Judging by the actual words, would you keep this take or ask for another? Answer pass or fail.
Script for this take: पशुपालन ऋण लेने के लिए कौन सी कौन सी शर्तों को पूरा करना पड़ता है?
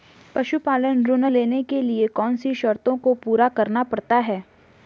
fail